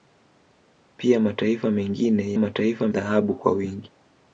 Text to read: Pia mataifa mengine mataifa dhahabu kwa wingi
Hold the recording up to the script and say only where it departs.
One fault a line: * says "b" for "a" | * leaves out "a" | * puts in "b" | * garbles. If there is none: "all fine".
all fine